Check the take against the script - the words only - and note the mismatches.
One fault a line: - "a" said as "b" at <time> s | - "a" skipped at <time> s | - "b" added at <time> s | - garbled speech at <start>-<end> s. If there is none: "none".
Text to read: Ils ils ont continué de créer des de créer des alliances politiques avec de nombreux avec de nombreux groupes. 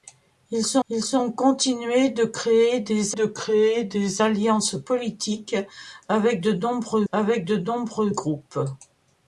none